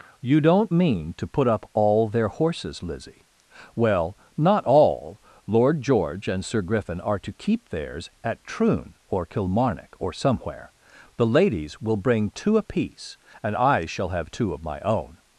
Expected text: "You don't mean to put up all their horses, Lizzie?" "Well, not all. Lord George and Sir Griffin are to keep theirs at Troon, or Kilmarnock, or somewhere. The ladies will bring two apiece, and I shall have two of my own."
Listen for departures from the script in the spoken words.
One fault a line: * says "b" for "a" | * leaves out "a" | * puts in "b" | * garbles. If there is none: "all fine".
all fine